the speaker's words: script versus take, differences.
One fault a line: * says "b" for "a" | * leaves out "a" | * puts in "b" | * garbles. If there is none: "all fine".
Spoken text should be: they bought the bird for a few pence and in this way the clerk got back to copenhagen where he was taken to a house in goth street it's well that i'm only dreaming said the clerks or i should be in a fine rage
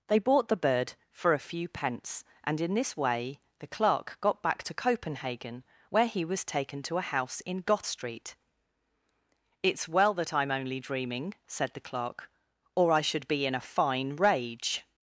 * says "clerk" for "clerks"